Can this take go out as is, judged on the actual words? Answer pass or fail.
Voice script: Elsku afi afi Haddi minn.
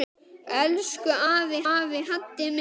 pass